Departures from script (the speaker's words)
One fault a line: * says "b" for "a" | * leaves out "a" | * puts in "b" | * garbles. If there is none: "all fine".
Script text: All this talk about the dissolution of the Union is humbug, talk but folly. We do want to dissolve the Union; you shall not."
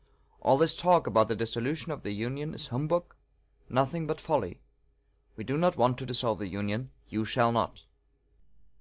* says "nothing" for "talk"
* puts in "not"